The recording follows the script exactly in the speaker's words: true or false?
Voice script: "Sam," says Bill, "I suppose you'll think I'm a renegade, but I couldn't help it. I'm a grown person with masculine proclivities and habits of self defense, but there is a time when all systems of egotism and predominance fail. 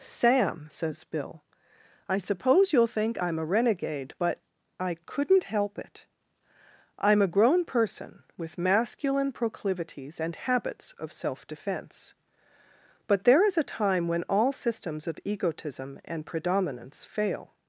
true